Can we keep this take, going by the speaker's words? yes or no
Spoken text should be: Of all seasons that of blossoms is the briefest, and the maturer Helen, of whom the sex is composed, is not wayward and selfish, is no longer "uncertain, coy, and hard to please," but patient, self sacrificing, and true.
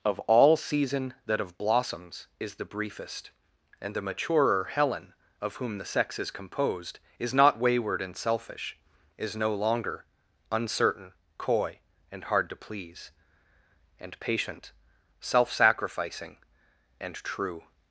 no